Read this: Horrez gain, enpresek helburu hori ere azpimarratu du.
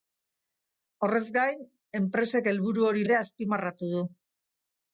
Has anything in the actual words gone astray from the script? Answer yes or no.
no